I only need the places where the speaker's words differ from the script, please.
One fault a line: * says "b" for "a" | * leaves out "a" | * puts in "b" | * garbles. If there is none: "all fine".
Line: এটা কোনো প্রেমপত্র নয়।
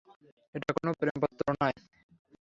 all fine